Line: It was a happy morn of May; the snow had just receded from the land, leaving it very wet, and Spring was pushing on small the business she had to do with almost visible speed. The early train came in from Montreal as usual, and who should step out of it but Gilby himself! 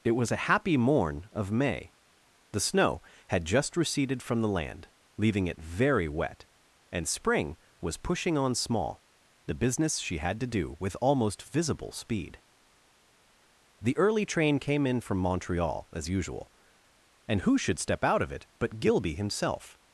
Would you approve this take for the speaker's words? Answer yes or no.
yes